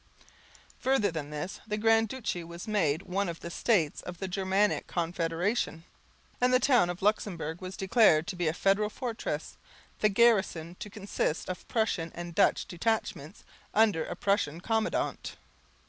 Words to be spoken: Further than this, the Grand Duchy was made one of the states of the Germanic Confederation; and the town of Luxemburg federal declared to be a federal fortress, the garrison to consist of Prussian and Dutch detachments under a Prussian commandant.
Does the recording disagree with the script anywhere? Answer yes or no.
yes